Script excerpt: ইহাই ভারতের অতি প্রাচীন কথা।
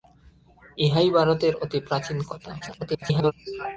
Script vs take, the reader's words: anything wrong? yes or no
yes